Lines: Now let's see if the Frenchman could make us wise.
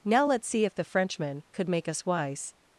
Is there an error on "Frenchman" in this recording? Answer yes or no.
no